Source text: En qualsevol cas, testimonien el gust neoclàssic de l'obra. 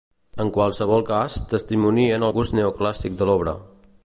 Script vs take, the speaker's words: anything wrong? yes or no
no